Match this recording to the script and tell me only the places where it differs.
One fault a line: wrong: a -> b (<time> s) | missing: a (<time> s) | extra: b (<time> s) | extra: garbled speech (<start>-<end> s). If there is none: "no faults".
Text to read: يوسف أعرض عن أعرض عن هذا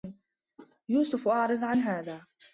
missing: أعرض عن (1.8 s)